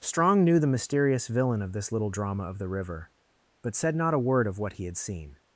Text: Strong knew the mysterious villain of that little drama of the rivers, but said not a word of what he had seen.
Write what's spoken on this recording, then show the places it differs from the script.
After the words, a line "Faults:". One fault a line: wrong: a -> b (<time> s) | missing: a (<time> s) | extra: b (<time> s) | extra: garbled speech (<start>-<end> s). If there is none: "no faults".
Strong knew the mysterious villain of this little drama of the river, but said not a word of what he had seen.
Faults:
wrong: that -> this (1.7 s)
wrong: rivers -> river (2.7 s)